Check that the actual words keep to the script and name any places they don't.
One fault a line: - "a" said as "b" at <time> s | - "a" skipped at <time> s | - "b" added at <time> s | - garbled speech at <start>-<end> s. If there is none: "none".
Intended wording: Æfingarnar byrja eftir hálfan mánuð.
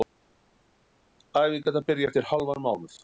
none